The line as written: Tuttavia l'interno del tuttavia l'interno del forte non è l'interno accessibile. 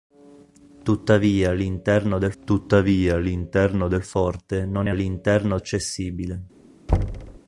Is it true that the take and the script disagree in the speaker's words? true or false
false